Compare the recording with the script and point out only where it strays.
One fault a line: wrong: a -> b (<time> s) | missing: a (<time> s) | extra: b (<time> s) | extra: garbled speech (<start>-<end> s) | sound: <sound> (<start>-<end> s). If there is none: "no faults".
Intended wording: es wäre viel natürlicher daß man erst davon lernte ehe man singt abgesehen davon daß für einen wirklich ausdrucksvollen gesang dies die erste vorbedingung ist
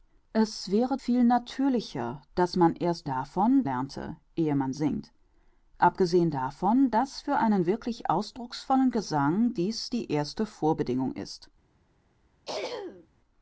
sound: throat clearing (12.4-13.1 s)